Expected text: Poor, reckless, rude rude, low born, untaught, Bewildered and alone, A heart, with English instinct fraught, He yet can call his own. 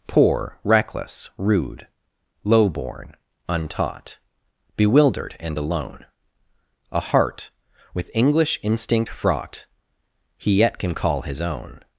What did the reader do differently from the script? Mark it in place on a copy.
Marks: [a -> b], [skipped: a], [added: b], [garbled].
Poor, reckless, rude [skipped: rude,] low born, untaught, Bewildered and alone, A heart, with English instinct fraught, He yet can call his own.